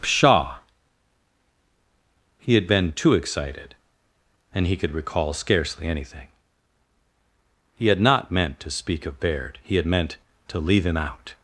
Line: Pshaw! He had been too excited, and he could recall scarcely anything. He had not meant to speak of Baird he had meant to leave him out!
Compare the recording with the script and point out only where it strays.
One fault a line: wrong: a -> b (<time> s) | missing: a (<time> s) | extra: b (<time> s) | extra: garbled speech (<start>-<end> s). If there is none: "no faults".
no faults